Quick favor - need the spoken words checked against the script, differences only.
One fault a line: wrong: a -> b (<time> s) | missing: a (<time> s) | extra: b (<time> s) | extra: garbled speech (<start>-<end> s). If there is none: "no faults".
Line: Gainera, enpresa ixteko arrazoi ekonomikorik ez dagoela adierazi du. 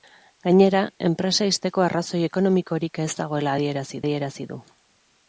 extra: adierazi (4.0 s)